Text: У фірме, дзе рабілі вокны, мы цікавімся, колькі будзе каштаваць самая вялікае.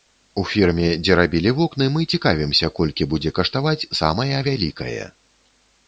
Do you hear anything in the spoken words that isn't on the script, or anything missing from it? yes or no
no